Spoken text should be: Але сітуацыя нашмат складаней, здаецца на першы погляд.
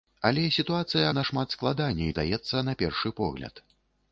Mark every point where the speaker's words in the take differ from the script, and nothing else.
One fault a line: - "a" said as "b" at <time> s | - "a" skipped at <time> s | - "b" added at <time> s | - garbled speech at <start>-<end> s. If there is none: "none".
none